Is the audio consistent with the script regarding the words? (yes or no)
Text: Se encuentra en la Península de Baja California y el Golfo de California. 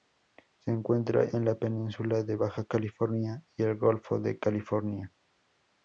yes